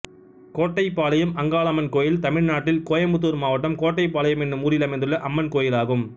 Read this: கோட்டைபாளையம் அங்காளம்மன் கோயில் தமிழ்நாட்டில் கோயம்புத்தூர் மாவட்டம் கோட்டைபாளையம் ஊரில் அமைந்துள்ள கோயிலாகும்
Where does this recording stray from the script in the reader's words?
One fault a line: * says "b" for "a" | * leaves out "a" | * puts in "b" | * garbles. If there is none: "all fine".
* puts in "என்னும்"
* puts in "அம்மன்"